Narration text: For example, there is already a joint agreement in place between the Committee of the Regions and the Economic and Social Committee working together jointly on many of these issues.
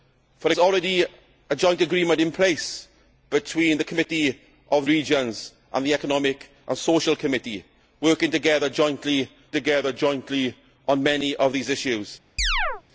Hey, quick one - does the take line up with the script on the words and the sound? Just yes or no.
no